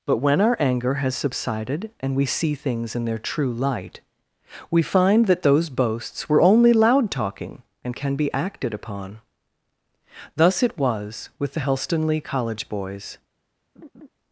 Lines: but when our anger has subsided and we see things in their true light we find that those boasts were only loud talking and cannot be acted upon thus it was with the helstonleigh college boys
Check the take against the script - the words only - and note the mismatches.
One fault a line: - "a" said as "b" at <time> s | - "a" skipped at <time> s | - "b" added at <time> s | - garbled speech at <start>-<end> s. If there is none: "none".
- "cannot" said as "can" at 8.0 s